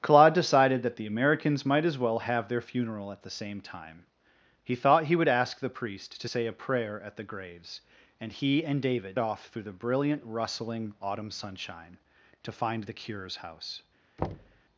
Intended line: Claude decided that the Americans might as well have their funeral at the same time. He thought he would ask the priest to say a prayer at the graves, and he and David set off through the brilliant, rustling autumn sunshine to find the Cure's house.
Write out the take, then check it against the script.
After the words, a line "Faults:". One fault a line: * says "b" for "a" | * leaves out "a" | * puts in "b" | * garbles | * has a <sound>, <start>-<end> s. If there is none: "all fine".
Claude decided that the Americans might as well have their funeral at the same time. He thought he would ask the priest to say a prayer at the graves, and he and David off through the brilliant, rustling autumn sunshine to find the Cure's house.
Faults:
* leaves out "set"
* has a thud, 14.2-14.6 s